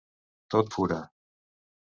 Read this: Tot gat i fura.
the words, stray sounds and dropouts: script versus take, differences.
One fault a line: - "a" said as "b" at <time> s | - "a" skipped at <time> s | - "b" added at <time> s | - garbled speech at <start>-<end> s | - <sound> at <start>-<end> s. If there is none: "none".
- "gat" skipped at 0.7 s